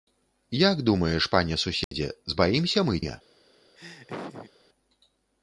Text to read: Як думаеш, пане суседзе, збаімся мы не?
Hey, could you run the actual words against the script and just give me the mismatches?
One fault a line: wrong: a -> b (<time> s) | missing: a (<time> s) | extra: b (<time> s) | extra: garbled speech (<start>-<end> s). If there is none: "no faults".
no faults